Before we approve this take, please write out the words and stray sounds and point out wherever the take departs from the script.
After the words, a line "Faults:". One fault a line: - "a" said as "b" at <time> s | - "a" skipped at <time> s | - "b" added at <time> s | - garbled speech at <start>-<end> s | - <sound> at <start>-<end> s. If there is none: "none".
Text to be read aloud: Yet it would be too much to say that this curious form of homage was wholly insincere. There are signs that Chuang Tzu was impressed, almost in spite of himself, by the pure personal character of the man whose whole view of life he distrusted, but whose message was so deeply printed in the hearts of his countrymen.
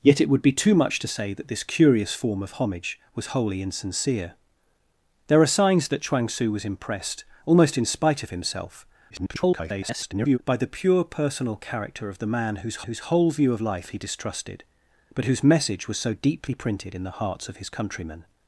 Yet it would be too much to say that this curious form of homage was wholly insincere. There are signs that Chuang Tzu was impressed, almost in spite of himself, [garbled] by the pure personal character of the man whose whose whole view of life he distrusted, but whose message was so deeply printed in the hearts of his countrymen.
Faults:
- garbled speech at 9.1-10.4 s
- "whose" added at 12.8 s